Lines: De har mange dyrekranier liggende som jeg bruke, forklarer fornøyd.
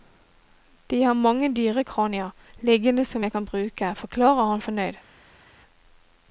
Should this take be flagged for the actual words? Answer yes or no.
yes